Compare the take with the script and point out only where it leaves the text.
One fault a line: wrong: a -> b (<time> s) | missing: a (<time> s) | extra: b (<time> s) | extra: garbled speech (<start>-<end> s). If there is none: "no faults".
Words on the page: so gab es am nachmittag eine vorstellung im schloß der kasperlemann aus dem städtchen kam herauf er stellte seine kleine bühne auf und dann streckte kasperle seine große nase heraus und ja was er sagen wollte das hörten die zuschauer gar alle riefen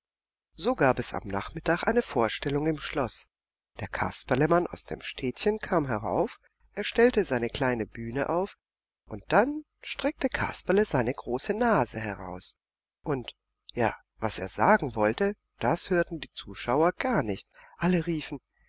extra: nicht (17.2 s)